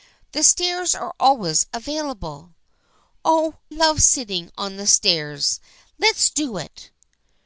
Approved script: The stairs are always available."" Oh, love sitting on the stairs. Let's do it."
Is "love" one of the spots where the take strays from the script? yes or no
no